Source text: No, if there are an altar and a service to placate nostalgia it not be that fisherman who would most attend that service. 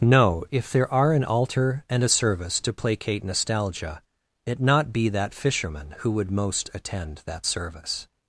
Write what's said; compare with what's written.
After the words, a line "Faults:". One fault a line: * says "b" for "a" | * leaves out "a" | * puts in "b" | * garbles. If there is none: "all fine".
No, if there are an altar and a service to placate nostalgia it not be that fisherman who would most attend that service.
Faults:
all fine